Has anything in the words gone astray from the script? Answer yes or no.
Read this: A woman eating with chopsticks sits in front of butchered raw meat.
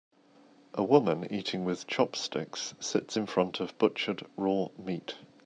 no